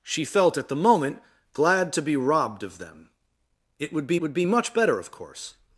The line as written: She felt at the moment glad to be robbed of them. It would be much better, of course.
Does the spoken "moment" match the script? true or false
true